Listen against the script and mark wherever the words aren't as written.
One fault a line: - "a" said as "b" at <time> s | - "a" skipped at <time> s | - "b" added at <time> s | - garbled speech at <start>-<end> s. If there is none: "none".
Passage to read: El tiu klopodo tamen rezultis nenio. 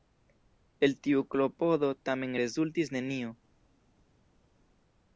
none